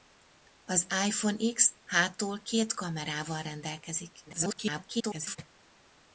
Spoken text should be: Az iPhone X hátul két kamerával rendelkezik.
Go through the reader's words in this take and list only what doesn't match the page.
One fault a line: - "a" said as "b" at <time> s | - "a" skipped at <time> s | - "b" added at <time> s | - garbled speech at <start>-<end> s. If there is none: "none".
- garbled speech at 4.3-5.4 s